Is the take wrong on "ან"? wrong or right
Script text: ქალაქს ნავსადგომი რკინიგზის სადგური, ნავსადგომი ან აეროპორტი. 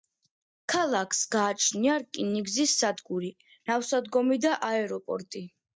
wrong